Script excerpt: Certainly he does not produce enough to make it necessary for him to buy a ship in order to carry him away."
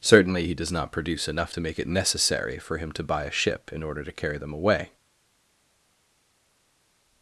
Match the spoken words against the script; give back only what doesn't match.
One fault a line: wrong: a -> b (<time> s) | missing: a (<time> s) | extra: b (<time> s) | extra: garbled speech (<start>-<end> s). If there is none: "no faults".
wrong: him -> them (4.4 s)